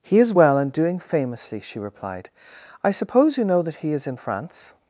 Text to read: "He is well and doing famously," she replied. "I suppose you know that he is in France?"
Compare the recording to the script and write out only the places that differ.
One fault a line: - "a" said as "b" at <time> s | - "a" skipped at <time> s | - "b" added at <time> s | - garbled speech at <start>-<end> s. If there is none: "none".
none